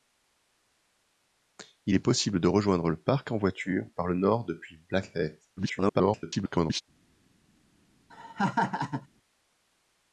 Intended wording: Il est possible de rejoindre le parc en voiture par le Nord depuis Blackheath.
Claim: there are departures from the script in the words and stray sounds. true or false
true